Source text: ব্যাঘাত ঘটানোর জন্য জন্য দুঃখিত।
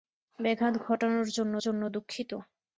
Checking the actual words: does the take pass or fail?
pass